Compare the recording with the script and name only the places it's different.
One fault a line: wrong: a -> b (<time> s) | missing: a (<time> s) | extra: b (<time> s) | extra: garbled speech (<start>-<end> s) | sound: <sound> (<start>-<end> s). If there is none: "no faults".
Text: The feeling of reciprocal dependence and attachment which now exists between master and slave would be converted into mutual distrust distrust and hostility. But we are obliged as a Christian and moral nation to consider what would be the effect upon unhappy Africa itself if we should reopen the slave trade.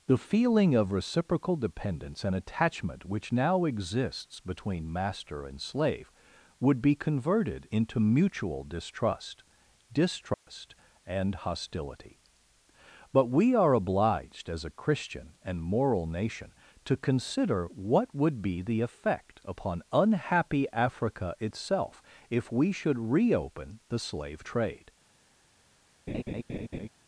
sound: dropout (10.3-10.5 s)
sound: laugh (26.1-26.9 s)